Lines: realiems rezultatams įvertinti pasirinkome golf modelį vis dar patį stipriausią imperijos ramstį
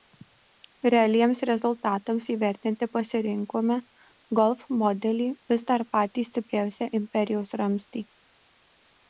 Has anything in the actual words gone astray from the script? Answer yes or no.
no